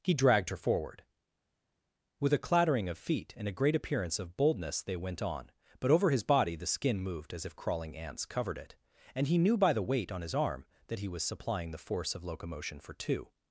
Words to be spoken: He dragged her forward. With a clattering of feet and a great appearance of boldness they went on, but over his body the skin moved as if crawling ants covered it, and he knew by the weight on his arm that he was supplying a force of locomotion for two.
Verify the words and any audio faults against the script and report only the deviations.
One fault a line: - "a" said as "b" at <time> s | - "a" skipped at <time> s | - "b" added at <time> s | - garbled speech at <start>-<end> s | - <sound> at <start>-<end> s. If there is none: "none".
- "a" said as "the" at 11.7 s